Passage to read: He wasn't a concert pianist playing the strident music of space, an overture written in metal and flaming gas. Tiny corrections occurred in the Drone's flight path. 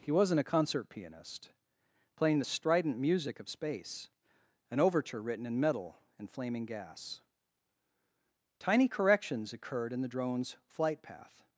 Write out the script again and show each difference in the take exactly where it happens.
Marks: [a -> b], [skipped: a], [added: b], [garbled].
He wasn't a concert pianist playing the strident music of space, an overture written in metal and flaming gas. Tiny corrections occurred in the Drone's flight path.